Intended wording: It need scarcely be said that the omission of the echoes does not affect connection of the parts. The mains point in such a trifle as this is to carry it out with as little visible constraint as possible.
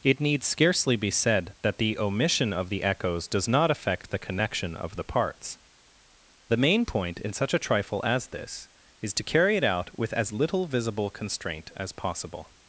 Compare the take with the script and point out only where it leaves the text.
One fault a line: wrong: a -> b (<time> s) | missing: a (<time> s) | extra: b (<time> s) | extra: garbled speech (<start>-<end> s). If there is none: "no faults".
extra: the (4.1 s)
wrong: mains -> main (6.6 s)